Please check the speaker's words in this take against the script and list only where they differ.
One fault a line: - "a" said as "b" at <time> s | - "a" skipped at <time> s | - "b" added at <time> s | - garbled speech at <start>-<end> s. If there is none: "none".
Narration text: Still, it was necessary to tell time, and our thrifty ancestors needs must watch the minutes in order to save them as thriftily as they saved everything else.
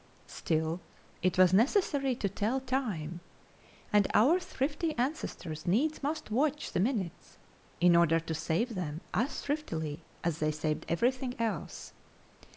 none